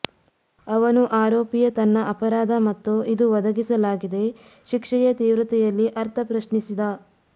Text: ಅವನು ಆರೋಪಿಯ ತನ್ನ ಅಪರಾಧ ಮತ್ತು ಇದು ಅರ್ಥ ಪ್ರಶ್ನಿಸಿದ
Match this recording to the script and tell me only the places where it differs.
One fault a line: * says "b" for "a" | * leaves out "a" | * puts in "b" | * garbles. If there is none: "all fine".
* puts in "ಒದಗಿಸಲಾಗಿದೆ ಶಿಕ್ಷೆಯ ತೀವ್ರತೆಯಲ್ಲಿ"